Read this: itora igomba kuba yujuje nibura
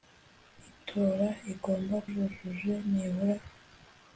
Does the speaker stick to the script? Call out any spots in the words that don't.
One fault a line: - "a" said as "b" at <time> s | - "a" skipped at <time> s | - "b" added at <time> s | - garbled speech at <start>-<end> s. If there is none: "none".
- "kuba" skipped at 2.0 s